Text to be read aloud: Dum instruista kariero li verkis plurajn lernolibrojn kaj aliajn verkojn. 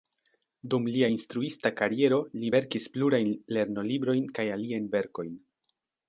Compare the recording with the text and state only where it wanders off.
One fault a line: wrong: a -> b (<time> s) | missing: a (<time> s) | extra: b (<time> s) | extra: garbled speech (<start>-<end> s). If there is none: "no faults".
extra: lia (0.9 s)